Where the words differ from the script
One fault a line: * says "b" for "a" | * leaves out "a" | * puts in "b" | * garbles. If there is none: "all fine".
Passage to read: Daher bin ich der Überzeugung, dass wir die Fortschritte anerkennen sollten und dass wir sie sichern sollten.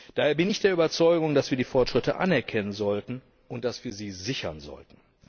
all fine